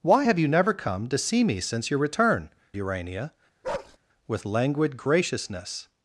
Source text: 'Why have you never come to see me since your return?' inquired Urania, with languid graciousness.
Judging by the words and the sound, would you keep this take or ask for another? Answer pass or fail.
fail